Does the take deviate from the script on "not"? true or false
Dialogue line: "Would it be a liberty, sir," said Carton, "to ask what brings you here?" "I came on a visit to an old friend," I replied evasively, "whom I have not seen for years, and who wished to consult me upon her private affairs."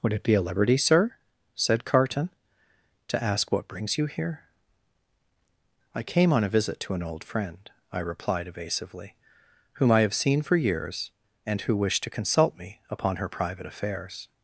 true